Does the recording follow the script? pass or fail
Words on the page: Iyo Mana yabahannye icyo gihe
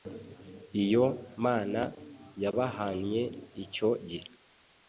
pass